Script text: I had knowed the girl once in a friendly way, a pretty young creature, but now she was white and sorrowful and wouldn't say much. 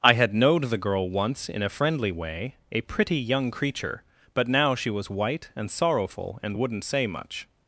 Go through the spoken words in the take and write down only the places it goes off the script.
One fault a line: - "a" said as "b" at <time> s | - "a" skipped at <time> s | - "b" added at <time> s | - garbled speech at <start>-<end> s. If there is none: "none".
none